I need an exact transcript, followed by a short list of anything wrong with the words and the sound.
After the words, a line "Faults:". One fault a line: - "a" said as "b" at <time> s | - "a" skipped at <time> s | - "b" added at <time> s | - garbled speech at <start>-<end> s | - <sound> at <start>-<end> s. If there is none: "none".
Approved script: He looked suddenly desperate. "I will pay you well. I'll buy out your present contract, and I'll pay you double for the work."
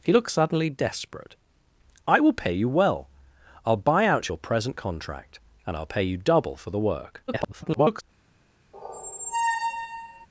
He looked suddenly desperate. "I will pay you well. I'll buy out your present contract, and I'll pay you double for the work." [garbled]
Faults:
- garbled speech at 7.3-8.0 s
- squeak at 8.7-10.3 s